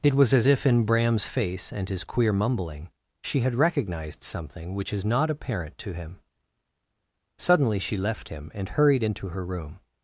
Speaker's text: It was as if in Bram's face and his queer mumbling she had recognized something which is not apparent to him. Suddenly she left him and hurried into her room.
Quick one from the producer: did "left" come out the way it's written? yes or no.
yes